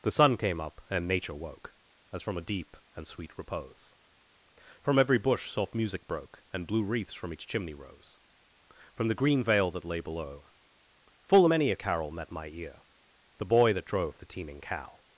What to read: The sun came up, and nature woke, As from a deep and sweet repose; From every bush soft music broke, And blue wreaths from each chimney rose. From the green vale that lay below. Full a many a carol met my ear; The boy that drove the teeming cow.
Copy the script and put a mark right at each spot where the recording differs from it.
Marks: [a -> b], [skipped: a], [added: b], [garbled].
The sun came up, and nature woke, As from a deep and sweet repose; From every bush soft music broke, And blue wreaths from each chimney rose. From the green vale that lay below. Full a many a carol met my ear; The boy that drove the teeming cow.